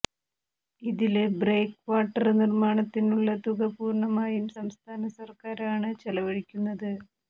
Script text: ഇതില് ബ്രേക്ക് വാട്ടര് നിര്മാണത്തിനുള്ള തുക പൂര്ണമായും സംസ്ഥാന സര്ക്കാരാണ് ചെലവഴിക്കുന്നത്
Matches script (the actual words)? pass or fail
pass